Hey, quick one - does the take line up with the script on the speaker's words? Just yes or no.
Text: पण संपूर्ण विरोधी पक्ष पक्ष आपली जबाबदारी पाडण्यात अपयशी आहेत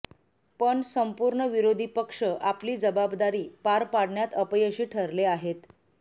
no